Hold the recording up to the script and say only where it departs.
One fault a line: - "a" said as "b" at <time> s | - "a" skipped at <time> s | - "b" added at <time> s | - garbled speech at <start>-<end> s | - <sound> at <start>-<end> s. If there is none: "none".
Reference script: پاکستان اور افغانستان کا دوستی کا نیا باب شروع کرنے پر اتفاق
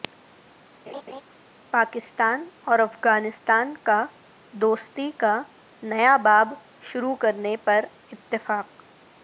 - laugh at 0.9-1.2 s